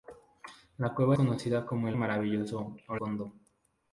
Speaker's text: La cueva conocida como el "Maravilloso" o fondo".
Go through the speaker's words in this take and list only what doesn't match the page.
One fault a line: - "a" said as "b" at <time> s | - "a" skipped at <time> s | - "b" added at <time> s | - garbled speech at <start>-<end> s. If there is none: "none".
none